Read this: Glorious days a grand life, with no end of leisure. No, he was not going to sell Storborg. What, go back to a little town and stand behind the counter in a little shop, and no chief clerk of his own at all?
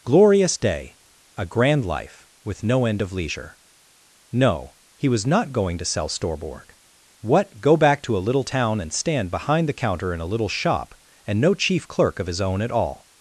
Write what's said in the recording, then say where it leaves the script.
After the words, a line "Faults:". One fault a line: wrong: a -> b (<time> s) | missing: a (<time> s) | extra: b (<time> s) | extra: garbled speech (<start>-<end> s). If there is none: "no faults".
Glorious day a grand life, with no end of leisure. No, he was not going to sell Storborg. What, go back to a little town and stand behind the counter in a little shop, and no chief clerk of his own at all?
Faults:
wrong: days -> day (0.6 s)